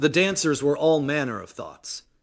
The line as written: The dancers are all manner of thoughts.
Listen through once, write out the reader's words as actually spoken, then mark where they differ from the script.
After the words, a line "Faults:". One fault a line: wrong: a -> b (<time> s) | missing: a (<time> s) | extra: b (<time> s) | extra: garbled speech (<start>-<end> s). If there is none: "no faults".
The dancers were all manner of thoughts.
Faults:
wrong: are -> were (0.6 s)